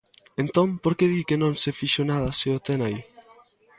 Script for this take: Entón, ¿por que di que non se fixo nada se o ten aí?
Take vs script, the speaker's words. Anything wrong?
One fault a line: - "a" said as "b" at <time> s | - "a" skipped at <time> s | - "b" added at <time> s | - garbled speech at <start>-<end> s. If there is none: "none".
none